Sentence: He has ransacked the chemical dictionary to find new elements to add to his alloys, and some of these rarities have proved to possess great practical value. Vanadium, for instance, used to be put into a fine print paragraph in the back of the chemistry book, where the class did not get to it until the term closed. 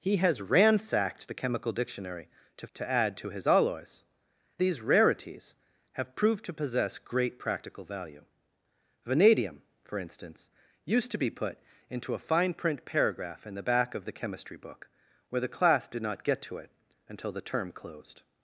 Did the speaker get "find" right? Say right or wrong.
wrong